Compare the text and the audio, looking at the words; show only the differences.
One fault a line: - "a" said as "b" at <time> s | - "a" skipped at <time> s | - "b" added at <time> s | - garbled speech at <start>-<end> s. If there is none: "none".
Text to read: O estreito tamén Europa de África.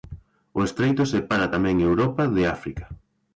- "separa" added at 1.1 s